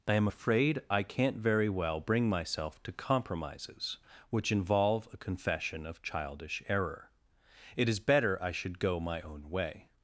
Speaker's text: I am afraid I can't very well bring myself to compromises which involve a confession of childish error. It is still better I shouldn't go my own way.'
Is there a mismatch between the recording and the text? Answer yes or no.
yes